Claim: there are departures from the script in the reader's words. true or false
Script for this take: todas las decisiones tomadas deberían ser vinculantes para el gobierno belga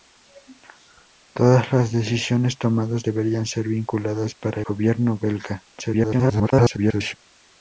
true